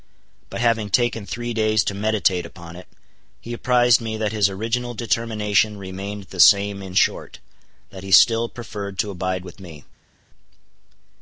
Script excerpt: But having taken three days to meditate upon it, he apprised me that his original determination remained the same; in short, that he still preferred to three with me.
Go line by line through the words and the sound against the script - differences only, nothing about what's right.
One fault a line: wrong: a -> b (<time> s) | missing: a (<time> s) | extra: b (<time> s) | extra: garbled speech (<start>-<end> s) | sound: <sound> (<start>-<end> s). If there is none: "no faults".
wrong: three -> abide (9.1 s)